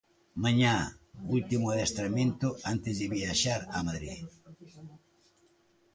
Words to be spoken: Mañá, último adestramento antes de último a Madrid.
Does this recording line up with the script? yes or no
no